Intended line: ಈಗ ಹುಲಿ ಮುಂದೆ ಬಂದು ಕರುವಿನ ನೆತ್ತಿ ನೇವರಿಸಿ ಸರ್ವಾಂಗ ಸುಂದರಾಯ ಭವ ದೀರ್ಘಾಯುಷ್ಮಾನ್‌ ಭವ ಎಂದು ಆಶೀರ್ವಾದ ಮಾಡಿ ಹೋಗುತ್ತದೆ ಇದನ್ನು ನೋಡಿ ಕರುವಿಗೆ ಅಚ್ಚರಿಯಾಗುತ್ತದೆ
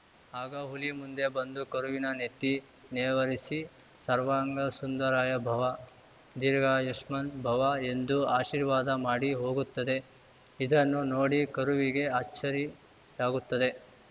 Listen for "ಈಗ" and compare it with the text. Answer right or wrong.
wrong